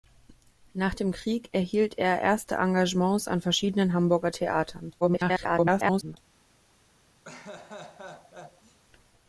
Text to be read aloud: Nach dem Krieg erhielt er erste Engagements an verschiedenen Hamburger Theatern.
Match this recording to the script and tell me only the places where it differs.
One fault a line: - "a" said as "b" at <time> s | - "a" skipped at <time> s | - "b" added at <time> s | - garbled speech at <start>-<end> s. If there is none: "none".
- garbled speech at 5.0-6.2 s